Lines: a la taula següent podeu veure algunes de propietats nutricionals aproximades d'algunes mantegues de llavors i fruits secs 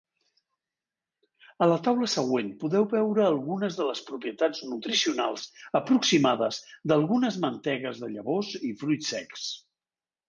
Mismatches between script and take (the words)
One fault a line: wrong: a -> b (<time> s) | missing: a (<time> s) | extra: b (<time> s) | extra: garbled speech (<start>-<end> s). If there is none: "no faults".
extra: les (3.9 s)